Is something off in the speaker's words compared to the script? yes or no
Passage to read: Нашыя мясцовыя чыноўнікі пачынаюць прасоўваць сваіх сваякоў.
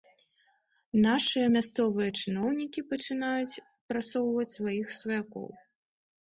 no